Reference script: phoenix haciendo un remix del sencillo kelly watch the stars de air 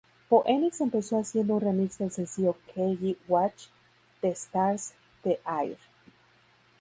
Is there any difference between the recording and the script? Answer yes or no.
yes